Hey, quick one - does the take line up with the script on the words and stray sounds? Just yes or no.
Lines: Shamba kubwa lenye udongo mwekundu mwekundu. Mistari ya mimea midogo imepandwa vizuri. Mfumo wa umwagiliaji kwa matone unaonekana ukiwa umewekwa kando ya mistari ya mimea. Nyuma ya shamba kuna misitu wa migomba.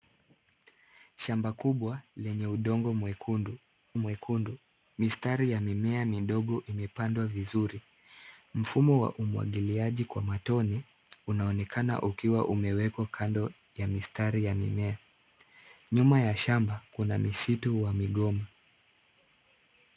yes